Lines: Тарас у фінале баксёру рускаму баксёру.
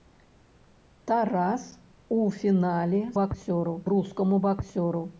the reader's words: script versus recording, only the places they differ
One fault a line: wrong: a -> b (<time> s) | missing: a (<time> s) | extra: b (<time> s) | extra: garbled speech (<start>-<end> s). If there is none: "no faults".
no faults